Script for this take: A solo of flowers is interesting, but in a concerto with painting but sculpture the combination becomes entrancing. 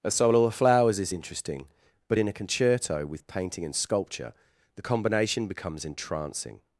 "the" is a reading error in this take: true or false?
false